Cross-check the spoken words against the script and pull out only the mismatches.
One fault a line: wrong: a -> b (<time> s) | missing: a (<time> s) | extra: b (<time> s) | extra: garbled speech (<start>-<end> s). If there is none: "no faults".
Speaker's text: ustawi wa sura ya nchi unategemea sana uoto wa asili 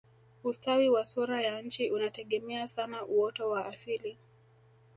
no faults